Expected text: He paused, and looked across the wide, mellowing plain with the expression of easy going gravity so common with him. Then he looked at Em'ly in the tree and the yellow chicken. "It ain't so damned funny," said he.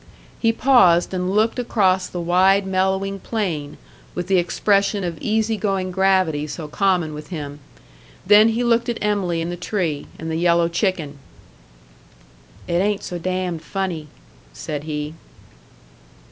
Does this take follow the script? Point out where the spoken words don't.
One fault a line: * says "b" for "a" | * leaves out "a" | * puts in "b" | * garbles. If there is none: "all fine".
all fine